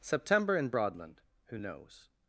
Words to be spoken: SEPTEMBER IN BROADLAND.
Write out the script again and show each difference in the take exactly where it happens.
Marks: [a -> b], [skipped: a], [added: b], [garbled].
SEPTEMBER IN BROADLAND. [added: who knows]